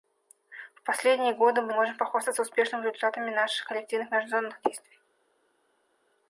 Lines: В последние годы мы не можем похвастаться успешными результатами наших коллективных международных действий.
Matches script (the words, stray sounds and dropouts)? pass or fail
fail